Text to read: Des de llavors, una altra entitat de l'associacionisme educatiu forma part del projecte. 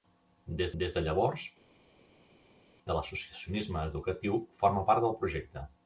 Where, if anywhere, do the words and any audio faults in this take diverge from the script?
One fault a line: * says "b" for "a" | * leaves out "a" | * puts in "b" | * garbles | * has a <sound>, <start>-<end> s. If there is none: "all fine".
* puts in "des"
* leaves out "una altra entitat"